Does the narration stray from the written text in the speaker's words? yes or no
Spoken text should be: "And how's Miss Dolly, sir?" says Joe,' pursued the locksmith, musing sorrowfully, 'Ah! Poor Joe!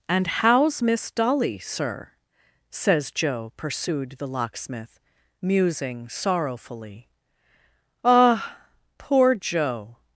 no